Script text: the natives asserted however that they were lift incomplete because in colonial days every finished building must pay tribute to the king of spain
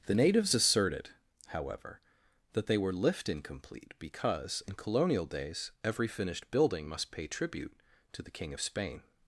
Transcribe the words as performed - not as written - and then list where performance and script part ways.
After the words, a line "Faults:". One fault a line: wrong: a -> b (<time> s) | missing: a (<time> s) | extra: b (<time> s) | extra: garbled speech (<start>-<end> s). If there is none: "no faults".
the natives asserted however that they were lift incomplete because in colonial days every finished building must pay tribute to the king of spain
Faults:
no faults